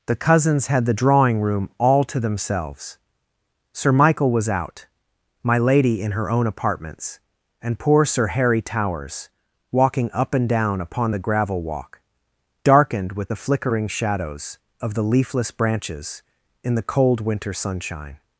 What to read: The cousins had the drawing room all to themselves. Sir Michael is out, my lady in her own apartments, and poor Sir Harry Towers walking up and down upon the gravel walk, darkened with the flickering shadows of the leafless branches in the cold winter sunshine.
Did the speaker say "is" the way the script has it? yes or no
no